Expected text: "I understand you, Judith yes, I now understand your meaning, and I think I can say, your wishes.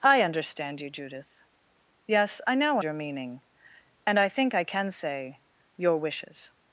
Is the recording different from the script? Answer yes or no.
yes